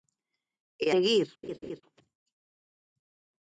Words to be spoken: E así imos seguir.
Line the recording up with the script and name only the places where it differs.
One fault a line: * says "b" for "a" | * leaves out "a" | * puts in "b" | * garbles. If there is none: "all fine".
* leaves out "así imos"